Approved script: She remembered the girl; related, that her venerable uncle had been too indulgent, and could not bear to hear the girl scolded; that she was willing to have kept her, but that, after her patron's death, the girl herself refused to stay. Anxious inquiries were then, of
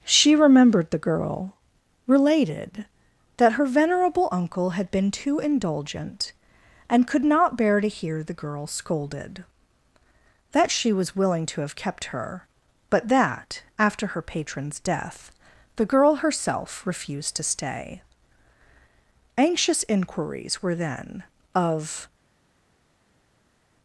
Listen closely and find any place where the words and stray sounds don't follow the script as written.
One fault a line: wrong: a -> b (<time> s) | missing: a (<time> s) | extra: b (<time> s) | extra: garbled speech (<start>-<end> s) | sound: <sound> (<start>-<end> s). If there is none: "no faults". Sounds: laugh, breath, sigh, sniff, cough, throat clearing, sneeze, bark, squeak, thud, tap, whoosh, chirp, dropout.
no faults